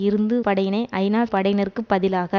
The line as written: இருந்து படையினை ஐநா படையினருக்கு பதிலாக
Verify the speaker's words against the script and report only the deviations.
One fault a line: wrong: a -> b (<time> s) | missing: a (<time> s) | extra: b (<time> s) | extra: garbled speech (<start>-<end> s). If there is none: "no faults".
no faults